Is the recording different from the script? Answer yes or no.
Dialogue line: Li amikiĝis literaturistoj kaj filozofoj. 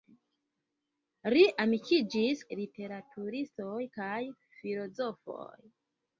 no